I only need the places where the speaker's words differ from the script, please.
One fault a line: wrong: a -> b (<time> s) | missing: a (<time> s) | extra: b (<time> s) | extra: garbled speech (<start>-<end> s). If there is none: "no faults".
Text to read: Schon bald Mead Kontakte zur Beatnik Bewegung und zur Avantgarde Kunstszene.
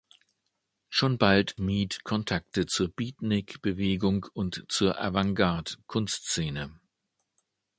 no faults